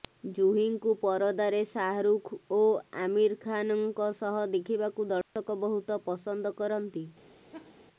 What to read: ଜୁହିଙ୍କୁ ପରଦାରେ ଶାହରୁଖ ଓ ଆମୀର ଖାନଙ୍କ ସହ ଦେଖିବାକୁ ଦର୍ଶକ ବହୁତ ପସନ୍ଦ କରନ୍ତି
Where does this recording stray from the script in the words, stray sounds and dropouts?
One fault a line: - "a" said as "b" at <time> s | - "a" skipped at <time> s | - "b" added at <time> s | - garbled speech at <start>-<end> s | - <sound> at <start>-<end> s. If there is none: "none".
- dropout at 5.2-5.4 s
- laugh at 7.5-7.8 s